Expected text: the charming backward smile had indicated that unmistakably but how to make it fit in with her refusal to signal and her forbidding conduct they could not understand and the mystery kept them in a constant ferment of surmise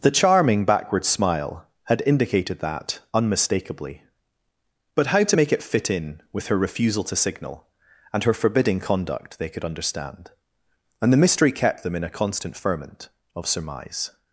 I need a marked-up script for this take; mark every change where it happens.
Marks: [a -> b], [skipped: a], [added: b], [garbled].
the charming backward smile had indicated that unmistakably but how to make it fit in with her refusal to signal and her forbidding conduct they could [skipped: not] understand and the mystery kept them in a constant ferment of surmise